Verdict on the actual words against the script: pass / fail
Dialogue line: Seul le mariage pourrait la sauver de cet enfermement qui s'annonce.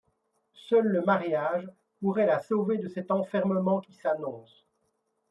pass